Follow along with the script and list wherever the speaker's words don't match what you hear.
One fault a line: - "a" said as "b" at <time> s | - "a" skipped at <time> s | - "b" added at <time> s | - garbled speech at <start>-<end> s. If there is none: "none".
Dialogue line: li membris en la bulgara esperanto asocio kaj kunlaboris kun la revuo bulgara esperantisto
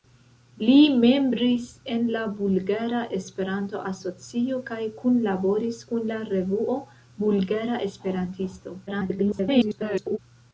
- garbled speech at 8.9-10.2 s